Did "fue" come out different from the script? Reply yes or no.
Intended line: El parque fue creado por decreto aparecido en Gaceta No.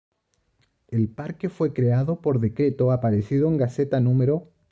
no